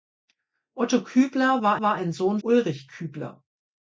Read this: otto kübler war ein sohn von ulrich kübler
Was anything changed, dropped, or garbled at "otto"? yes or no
no